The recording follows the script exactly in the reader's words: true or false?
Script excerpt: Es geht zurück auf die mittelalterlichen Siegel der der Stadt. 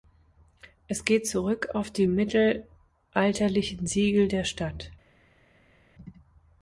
false